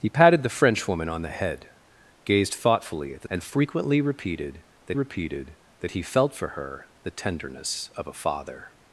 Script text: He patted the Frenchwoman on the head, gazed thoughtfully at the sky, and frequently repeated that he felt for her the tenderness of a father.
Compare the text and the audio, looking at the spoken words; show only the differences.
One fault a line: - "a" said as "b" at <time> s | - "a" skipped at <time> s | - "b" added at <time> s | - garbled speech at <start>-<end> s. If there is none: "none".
- "sky" skipped at 3.3 s
- "repeated that" added at 4.9 s